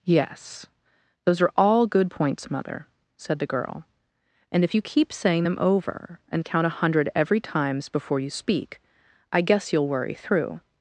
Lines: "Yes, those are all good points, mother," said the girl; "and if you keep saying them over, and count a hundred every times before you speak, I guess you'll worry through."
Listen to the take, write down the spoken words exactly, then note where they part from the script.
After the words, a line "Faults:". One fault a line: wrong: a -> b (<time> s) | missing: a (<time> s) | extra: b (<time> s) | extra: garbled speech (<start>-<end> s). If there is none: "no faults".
"Yes, those are all good points, mother," said the girl; "and if you keep saying them over, and count a hundred every times before you speak, I guess you'll worry through."
Faults:
no faults